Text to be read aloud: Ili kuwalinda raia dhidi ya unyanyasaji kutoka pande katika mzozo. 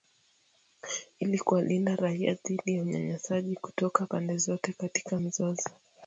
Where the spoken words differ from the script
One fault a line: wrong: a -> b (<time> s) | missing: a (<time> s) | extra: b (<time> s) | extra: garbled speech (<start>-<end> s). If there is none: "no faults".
extra: zote (4.4 s)